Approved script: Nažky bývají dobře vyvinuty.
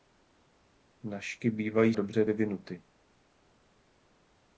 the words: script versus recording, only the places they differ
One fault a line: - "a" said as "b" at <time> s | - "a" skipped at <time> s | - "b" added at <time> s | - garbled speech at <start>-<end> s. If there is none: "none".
none